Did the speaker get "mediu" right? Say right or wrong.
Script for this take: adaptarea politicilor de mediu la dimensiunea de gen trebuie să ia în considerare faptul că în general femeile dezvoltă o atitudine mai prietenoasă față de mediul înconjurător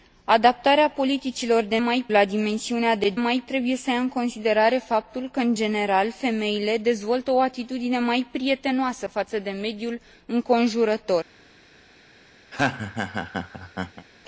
wrong